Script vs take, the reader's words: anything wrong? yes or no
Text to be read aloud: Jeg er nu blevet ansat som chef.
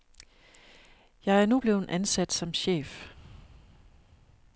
no